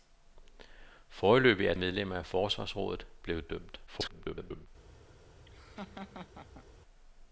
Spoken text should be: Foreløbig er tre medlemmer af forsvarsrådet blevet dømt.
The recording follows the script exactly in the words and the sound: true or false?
false